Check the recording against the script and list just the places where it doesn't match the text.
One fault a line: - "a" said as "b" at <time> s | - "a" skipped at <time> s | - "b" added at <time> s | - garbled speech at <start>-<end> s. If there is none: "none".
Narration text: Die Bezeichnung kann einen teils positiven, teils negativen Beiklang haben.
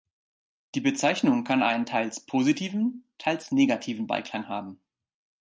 none